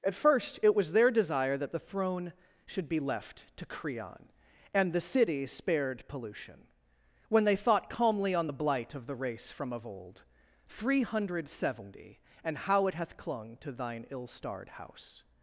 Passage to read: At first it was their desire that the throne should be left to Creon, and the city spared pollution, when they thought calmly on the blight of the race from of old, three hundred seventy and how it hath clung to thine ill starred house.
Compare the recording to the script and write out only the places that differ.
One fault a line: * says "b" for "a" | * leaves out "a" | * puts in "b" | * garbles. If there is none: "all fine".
all fine